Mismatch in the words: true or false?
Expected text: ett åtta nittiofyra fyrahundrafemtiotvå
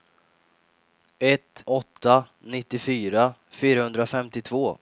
false